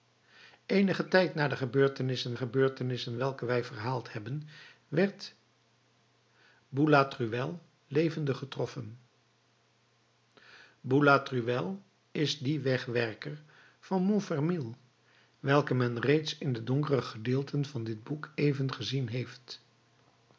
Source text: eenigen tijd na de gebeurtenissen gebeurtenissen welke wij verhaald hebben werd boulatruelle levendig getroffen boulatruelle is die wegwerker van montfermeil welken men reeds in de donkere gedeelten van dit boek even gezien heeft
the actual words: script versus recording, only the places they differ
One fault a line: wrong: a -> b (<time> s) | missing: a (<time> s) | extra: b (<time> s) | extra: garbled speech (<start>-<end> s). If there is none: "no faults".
no faults